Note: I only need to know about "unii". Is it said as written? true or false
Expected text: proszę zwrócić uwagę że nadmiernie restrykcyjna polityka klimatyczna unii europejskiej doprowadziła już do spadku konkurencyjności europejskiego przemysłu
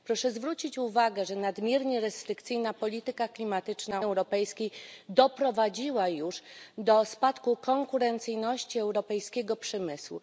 false